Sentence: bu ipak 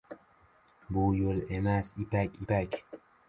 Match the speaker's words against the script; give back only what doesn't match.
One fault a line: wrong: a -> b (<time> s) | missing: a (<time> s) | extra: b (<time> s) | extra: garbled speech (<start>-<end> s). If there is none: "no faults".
extra: yol emas ipak (1.2 s)